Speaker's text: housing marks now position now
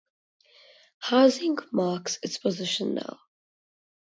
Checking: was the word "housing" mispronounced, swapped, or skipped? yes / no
no